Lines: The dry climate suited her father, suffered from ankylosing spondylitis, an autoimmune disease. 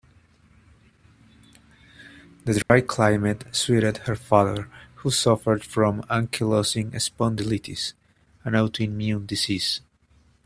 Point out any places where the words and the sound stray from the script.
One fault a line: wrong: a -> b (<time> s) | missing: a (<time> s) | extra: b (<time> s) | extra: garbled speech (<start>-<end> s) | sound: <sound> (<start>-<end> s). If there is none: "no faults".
sound: dropout (2.6-2.7 s)
extra: who (5.0 s)